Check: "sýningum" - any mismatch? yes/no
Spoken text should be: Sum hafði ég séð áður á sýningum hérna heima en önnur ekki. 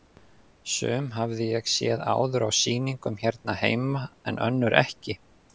no